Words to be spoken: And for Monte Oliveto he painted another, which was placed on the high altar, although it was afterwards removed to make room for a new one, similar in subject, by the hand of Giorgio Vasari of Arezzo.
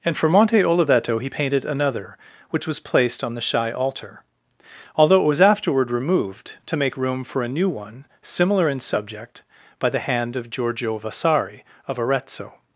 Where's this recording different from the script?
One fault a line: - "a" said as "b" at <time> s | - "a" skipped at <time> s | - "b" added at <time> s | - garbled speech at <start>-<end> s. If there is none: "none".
- "high" said as "shy" at 3.4 s
- "afterwards" said as "afterward" at 5.4 s